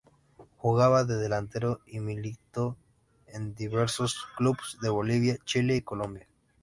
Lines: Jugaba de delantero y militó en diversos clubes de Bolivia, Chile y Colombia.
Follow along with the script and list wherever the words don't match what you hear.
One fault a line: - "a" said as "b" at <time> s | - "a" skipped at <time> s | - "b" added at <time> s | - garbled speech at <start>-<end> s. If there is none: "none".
none